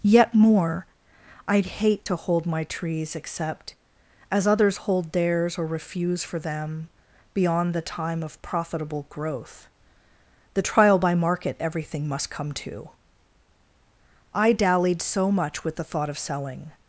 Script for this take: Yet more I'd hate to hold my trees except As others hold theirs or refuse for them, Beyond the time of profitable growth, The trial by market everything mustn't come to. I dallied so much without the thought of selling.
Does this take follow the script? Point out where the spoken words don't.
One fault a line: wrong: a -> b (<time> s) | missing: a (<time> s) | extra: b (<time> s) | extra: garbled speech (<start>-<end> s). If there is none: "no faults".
wrong: mustn't -> must (12.1 s)
wrong: without -> with (15.6 s)